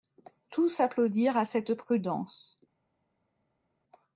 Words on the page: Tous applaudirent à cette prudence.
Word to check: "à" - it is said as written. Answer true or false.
true